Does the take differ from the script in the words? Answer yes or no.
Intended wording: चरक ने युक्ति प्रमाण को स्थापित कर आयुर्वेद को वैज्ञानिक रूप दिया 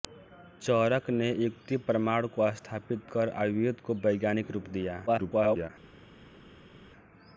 yes